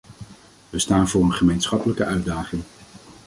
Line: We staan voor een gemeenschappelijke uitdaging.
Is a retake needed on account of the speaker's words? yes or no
no